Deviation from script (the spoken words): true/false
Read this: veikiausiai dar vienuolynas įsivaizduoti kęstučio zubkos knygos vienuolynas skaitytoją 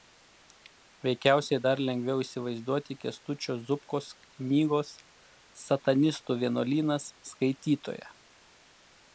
true